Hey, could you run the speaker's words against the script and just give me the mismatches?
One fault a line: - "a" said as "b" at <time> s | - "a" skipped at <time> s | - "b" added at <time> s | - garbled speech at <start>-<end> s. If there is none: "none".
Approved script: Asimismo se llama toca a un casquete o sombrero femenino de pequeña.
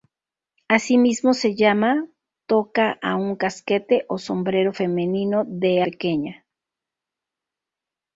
none